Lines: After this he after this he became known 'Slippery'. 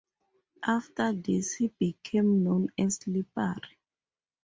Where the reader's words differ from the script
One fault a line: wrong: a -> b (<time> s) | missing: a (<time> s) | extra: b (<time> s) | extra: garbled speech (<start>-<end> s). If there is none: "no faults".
missing: after this he (1.7 s)
extra: as (2.8 s)